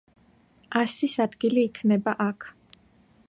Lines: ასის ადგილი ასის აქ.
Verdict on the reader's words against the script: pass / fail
fail